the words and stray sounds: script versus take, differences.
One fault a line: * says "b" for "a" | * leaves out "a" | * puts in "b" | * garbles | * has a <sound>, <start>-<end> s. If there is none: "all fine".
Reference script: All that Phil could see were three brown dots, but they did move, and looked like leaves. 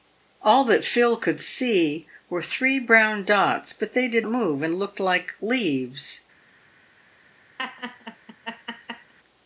* has a laugh, 7.6-9.1 s